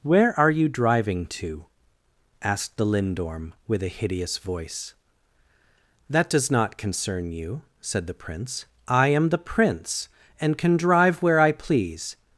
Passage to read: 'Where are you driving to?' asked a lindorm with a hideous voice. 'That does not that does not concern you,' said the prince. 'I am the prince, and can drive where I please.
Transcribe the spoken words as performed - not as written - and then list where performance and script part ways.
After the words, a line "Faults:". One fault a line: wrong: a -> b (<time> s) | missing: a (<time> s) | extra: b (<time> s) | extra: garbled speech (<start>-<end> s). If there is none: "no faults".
'Where are you driving to?' asked the lindorm with a hideous voice. 'That does not concern you,' said the prince. 'I am the prince, and can drive where I please.
Faults:
wrong: a -> the (2.8 s)
missing: that does not (6.8 s)